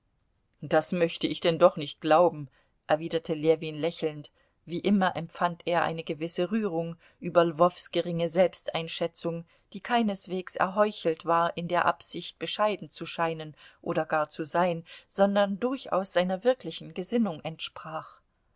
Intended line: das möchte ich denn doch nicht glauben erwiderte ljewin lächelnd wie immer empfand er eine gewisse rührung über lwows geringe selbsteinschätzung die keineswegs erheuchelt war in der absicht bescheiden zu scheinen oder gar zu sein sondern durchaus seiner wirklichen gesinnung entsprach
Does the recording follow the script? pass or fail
pass